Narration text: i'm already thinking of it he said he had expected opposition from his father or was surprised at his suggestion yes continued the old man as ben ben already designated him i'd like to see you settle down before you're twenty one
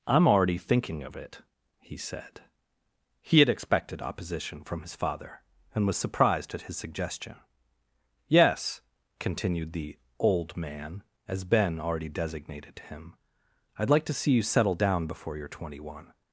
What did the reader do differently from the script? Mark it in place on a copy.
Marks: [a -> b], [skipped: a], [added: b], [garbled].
i'm already thinking of it he said he had expected opposition from his father [or -> and] was surprised at his suggestion yes continued the old man as ben [skipped: ben] already designated him i'd like to see you settle down before you're twenty one